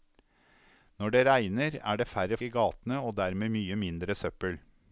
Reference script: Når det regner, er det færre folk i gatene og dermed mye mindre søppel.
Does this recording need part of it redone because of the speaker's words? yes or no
yes